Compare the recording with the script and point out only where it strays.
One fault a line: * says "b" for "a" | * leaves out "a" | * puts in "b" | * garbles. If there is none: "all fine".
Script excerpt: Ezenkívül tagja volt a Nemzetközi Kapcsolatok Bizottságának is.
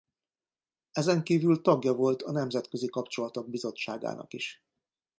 all fine